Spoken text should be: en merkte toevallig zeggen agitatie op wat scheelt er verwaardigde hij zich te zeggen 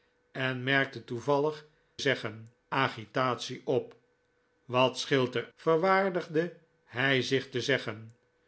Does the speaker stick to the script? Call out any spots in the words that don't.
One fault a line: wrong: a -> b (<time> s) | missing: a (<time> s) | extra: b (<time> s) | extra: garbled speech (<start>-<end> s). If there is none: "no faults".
no faults